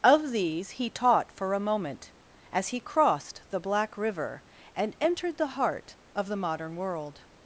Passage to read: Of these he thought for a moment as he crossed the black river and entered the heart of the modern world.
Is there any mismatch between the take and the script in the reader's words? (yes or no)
yes